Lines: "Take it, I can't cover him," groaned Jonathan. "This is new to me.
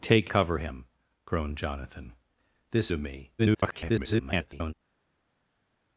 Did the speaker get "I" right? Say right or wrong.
wrong